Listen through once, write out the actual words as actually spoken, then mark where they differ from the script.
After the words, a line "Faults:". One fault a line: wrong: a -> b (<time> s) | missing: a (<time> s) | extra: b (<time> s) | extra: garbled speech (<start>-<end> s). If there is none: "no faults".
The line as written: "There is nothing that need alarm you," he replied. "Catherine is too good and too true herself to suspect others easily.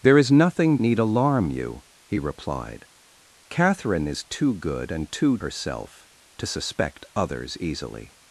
"There is nothing need alarm you," he replied. "Catherine is too good and too herself to suspect others easily.
Faults:
missing: that (0.8 s)
missing: true (5.4 s)